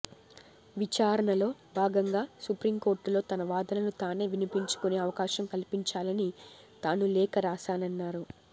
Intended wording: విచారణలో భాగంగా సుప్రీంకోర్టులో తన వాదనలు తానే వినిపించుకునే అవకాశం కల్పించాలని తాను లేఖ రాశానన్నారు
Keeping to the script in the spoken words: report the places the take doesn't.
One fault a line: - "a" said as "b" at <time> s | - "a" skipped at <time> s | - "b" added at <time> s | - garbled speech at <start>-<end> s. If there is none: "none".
none